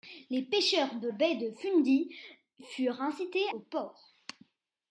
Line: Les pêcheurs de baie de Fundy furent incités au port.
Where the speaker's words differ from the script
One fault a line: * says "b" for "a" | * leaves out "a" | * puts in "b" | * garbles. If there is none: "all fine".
all fine